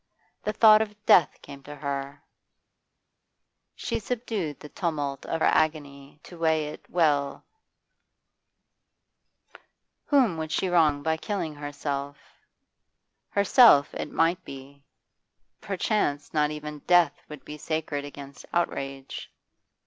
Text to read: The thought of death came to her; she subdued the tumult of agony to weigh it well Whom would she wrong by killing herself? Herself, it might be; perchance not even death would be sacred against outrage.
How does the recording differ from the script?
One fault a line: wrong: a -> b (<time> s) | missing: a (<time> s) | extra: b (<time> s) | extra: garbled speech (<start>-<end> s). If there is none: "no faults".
no faults